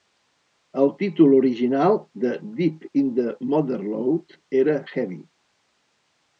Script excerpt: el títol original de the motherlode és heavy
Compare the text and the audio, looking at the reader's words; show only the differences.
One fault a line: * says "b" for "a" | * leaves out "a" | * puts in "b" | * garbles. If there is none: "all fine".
* puts in "deep in"
* says "era" for "és"